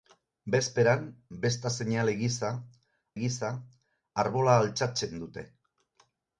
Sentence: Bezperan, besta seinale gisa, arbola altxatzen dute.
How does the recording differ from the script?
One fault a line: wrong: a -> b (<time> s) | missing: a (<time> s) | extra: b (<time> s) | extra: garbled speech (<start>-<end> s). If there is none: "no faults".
extra: gisa (3.2 s)